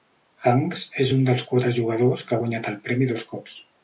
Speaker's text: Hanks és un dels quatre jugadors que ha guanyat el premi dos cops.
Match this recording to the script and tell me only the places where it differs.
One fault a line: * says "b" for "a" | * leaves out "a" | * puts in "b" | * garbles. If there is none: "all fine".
all fine